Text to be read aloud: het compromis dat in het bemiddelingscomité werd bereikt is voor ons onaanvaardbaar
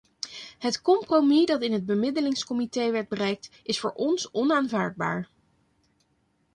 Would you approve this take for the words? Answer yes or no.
yes